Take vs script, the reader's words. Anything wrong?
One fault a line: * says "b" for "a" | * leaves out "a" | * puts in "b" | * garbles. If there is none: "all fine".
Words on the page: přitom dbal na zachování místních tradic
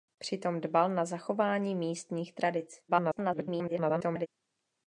* garbles